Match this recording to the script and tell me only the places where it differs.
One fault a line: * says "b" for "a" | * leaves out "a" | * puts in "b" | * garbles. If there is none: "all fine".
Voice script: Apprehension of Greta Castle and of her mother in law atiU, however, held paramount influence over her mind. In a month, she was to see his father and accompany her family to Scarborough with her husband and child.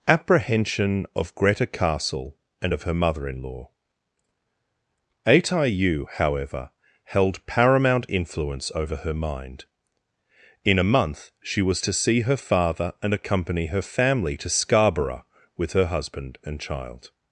* says "her" for "his"